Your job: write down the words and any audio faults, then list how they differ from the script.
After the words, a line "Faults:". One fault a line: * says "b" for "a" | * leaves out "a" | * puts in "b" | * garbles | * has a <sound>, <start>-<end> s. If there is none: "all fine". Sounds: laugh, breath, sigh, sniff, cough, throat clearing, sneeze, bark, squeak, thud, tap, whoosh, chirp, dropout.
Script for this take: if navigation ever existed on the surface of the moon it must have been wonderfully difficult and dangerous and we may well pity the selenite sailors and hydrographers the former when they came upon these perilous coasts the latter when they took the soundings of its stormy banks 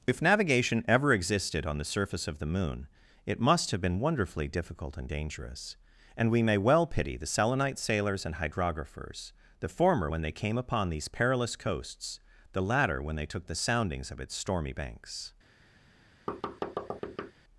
if navigation ever existed on the surface of the moon it must have been wonderfully difficult and dangerous and we may well pity the selenite sailors and hydrographers the former when they came upon these perilous coasts the latter when they took the soundings of its stormy banks
Faults:
* has a thud, 16.3-17.3 s